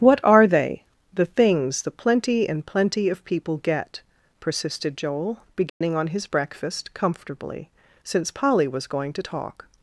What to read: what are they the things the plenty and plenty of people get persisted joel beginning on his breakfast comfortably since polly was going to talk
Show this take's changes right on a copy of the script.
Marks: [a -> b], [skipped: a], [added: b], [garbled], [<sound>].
what are they the things the plenty and plenty of people get persisted joel beginning [dropout] on his breakfast comfortably since polly was going to talk